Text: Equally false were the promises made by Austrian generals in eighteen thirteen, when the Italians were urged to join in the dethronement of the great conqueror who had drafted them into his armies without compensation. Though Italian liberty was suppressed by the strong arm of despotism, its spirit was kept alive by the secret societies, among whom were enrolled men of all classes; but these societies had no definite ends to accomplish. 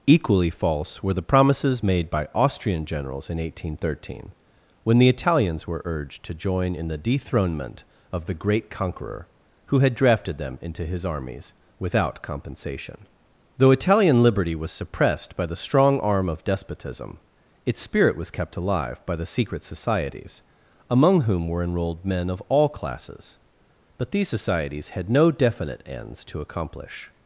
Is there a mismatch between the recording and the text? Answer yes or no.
no